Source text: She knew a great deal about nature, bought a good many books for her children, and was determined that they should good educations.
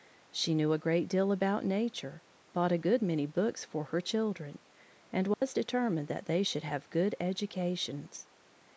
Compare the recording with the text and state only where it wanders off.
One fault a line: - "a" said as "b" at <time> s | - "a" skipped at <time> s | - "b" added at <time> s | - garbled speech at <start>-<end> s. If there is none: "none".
- "have" added at 6.6 s